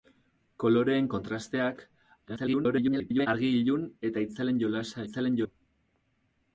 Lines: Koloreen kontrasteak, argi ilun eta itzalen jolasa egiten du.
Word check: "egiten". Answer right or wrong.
wrong